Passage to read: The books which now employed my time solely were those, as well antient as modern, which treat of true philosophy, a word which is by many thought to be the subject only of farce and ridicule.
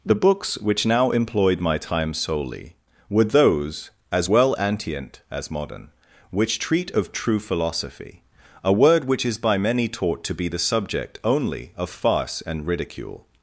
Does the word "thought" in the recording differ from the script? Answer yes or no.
yes